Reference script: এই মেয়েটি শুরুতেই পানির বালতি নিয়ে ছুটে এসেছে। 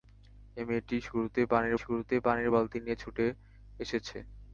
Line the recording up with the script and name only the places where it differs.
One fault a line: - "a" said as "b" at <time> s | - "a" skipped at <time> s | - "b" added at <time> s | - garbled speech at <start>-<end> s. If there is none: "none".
- "শুরুতেই পানির" added at 1.8 s